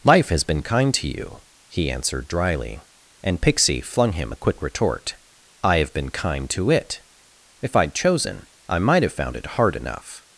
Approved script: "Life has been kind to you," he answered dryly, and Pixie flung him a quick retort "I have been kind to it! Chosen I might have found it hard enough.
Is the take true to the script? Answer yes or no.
no